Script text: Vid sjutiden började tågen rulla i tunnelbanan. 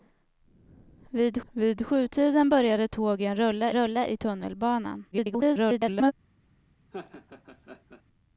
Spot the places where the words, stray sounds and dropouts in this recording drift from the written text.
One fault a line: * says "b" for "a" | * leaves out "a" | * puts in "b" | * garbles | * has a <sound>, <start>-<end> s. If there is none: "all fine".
* puts in "vid"
* puts in "rulla"
* garbles
* has a laugh, 6.9-8.0 s